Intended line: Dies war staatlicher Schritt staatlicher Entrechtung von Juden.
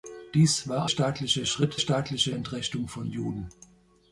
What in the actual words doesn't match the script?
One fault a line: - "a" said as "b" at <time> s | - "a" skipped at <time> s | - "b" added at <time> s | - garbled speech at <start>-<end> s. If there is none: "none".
none